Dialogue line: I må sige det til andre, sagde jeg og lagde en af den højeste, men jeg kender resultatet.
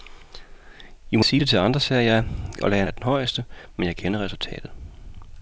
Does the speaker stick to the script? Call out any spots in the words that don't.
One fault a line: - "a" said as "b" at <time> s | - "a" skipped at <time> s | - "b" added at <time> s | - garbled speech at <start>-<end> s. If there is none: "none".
none